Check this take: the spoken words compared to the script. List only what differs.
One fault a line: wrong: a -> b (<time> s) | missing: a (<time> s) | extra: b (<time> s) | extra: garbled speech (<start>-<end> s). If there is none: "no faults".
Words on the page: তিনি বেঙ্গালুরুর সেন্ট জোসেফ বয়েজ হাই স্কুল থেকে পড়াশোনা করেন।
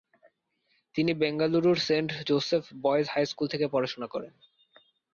no faults